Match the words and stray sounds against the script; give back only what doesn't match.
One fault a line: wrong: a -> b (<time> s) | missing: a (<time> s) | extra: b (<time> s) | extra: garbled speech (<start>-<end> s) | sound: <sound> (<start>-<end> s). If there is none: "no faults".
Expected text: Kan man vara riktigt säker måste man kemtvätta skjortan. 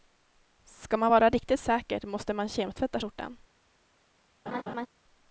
wrong: Kan -> Ska (0.7 s)
sound: laugh (4.5-4.9 s)